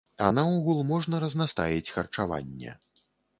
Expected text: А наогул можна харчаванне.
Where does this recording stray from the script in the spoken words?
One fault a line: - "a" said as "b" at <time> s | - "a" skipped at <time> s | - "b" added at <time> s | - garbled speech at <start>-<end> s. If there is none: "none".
- "разнастаіць" added at 1.2 s